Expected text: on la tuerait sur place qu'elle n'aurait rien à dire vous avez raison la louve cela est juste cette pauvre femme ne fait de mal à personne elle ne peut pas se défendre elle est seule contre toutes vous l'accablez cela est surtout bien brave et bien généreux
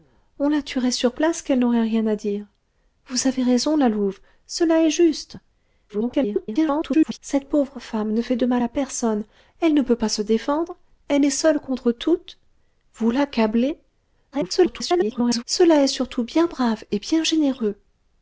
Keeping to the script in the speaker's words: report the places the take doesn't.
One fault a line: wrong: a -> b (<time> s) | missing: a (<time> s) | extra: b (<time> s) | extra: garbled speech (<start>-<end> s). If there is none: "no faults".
extra: garbled speech (5.9-7.2 s)
extra: garbled speech (14.3-15.4 s)